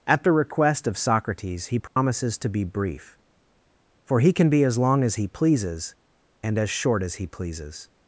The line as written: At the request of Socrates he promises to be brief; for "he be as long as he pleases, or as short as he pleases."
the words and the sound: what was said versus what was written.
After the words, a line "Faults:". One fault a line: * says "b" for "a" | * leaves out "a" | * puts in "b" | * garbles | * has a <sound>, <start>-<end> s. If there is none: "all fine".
At the request of Socrates he promises to be brief; for "he can be as long as he pleases, and as short as he pleases."
Faults:
* has a dropout, 1.9-2.0 s
* puts in "can"
* says "and" for "or"